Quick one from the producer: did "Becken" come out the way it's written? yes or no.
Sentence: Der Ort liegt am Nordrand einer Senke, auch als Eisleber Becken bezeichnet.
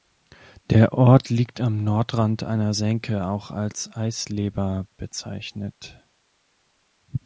no